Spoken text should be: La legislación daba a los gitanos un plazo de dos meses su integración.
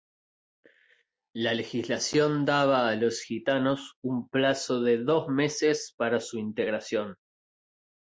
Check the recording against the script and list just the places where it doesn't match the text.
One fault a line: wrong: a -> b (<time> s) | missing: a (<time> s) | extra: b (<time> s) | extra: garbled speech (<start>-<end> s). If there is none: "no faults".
extra: para (5.9 s)